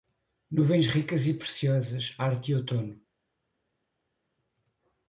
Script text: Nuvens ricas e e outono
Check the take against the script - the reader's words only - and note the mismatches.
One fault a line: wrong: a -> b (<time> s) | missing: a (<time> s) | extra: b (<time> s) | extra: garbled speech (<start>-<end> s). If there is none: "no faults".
extra: preciosas arte (1.4 s)